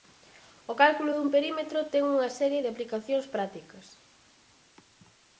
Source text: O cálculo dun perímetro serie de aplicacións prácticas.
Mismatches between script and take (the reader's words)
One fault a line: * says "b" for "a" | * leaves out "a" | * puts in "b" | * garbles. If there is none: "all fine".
* puts in "ten unha"